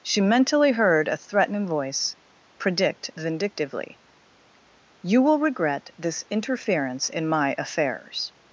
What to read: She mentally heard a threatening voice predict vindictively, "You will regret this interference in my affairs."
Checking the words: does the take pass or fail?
pass